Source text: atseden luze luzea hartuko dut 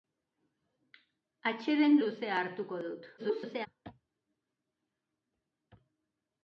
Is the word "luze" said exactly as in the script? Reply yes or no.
no